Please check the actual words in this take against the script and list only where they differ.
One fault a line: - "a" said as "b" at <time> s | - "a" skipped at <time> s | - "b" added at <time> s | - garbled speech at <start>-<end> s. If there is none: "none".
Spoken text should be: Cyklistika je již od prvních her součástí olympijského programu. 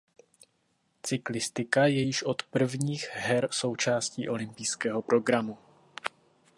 none